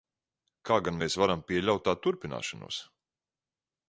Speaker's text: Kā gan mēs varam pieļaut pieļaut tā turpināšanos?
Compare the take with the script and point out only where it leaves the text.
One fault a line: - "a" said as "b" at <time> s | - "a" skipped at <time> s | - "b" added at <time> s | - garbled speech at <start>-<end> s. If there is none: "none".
- "pieļaut" skipped at 1.9 s